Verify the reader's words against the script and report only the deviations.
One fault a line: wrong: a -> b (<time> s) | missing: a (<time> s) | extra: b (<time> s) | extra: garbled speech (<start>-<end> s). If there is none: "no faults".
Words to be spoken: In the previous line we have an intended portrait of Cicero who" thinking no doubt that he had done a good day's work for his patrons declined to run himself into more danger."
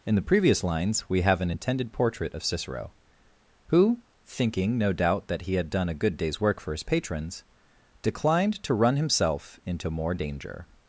wrong: line -> lines (0.6 s)